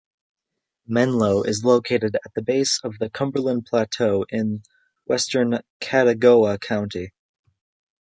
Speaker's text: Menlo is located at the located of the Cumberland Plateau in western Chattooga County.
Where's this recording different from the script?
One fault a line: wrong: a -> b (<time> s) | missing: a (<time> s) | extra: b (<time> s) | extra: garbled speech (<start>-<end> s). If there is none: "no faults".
wrong: located -> base (2.4 s)